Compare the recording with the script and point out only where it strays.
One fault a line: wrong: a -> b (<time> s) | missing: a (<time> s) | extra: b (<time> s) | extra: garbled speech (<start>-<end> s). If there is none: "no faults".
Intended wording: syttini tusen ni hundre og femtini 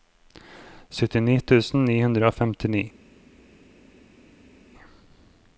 no faults